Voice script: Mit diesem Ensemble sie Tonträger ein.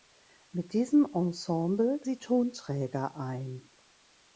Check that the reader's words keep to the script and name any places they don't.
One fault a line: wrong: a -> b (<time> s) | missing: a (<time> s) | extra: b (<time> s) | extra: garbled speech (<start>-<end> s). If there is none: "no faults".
no faults